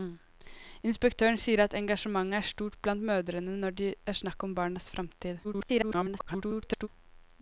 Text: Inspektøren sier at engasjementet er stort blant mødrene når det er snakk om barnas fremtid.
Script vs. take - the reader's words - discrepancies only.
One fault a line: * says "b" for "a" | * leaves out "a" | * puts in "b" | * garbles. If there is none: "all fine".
* garbles